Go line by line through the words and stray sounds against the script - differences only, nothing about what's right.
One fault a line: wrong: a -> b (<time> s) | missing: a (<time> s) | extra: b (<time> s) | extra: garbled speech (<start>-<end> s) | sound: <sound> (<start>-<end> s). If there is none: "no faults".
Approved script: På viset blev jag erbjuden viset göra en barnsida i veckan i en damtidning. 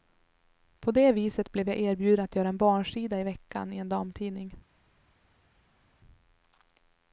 extra: det (0.9 s)
wrong: viset -> att (2.2 s)